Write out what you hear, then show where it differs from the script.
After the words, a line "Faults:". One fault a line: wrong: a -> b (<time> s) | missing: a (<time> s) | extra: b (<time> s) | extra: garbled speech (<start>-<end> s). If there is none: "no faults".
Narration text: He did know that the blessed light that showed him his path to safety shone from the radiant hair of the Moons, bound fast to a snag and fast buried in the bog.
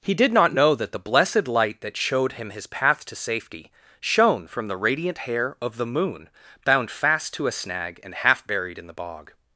He did not know that the blessed light that showed him his path to safety shone from the radiant hair of the Moon, bound fast to a snag and half buried in the bog.
Faults:
extra: not (0.3 s)
wrong: Moons -> Moon (5.8 s)
wrong: fast -> half (8.1 s)